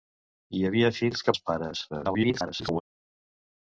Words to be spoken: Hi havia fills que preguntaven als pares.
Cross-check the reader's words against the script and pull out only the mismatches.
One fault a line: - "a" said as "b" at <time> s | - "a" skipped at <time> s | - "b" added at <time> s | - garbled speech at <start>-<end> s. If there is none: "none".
- "preguntaven" skipped at 1.4 s
- garbled speech at 1.9-2.8 s